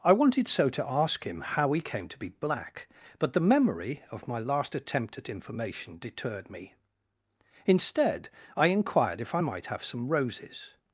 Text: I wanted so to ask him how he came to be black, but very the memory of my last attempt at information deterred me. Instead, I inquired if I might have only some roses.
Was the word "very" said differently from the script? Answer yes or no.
yes